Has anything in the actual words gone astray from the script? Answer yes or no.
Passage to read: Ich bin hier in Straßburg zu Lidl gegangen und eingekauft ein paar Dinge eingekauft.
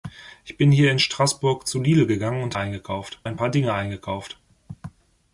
no